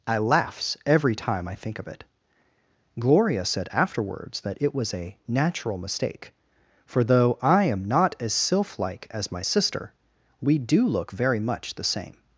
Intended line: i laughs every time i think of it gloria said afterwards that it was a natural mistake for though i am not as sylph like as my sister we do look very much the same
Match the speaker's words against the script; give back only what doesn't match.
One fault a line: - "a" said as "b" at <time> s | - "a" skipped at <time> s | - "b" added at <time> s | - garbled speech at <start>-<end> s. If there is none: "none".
none